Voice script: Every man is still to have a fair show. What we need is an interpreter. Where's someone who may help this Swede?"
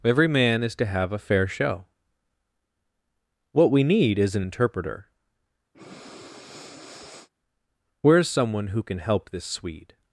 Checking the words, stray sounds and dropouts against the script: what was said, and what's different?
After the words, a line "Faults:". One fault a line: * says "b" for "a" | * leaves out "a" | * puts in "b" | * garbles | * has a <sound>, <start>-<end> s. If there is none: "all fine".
Every man is to have a fair show. What we need is an interpreter. Where's someone who can help this Swede?"
Faults:
* leaves out "still"
* has a breath, 5.7-7.3 s
* says "can" for "may"